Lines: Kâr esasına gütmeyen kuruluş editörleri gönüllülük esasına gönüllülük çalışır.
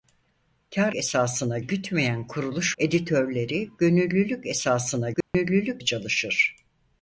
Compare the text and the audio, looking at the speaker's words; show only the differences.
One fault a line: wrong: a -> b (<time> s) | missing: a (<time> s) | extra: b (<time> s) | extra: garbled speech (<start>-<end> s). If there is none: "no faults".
no faults